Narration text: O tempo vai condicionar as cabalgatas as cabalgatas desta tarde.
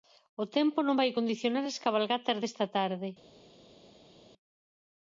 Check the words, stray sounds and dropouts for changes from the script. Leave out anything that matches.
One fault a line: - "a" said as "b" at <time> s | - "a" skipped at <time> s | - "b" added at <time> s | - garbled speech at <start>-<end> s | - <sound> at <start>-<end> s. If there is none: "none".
- "non" added at 0.8 s
- "as cabalgatas" skipped at 2.4 s